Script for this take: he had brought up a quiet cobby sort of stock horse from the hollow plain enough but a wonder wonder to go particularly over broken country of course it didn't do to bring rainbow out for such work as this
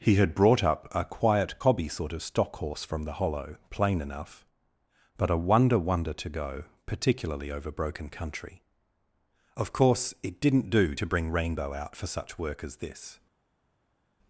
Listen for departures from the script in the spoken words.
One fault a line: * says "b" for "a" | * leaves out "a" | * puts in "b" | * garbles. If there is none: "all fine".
all fine